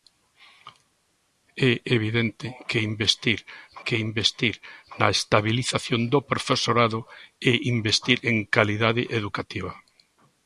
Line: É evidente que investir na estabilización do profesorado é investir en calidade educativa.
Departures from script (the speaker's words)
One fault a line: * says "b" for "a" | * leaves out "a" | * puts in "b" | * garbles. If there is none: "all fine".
* puts in "que investir"